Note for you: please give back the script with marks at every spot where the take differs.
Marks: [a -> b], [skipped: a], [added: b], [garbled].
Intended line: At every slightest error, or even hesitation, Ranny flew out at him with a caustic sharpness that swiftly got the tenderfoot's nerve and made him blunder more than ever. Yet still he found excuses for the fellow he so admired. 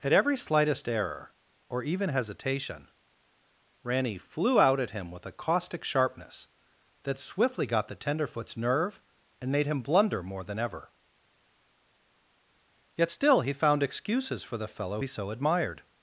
At every slightest error, or even hesitation, Ranny flew out at him with a caustic sharpness that swiftly got the tenderfoot's nerve and made him blunder more than ever. Yet still he found excuses for the fellow he so admired.